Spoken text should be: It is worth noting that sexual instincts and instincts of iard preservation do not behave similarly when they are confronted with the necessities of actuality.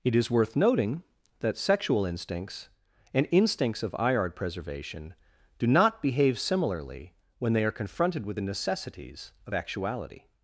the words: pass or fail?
pass